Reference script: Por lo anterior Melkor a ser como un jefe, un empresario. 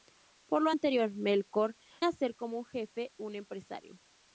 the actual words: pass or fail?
pass